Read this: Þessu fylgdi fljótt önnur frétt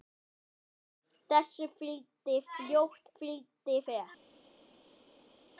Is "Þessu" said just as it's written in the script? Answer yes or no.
yes